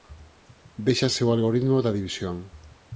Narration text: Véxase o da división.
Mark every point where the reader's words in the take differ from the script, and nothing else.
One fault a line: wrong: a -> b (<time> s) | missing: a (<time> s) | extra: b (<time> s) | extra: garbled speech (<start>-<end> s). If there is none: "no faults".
extra: algoritmo (1.4 s)